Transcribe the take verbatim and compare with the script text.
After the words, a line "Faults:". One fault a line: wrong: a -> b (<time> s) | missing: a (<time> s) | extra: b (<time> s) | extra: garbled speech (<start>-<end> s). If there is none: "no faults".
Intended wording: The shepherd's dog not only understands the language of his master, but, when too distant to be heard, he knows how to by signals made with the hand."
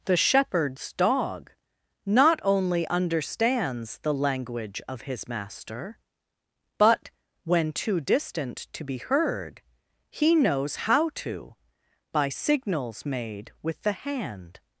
The shepherd's dog not only understands the language of his master, but, when too distant to be heard, he knows how to by signals made with the hand."
Faults:
no faults